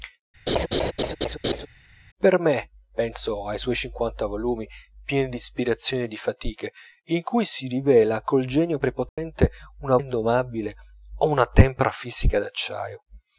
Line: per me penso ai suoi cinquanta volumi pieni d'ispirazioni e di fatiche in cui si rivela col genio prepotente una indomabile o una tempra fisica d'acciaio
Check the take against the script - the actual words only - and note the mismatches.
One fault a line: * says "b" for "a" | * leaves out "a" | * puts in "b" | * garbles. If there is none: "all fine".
all fine